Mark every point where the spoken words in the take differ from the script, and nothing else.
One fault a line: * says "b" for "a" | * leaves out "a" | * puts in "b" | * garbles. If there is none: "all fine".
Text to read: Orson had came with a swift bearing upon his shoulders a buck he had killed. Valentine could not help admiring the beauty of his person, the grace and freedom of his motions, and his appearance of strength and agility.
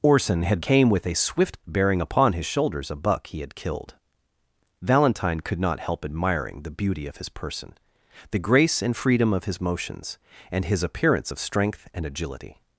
all fine